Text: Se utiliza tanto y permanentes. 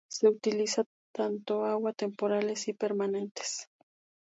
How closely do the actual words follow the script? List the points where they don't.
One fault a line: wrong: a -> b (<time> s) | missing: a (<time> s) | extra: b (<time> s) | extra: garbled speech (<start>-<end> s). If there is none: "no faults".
extra: agua temporales (1.6 s)